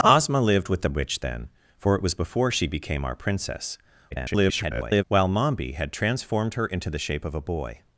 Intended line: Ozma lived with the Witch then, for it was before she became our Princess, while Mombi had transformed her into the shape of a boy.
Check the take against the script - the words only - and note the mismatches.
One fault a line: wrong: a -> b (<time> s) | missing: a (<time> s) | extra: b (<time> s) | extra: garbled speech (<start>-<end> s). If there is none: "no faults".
extra: garbled speech (4.1-5.0 s)